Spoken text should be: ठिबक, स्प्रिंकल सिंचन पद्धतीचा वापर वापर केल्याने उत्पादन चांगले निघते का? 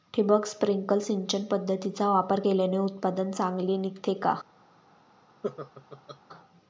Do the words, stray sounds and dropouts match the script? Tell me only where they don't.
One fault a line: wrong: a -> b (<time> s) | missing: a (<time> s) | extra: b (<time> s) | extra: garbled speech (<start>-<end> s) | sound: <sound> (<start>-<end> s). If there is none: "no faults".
missing: वापर (2.4 s)
sound: laugh (5.4-6.2 s)